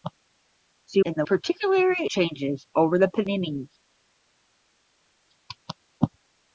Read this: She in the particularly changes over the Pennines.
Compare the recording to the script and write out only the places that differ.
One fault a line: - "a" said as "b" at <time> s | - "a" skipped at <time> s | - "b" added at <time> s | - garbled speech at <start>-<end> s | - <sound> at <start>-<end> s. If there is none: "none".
none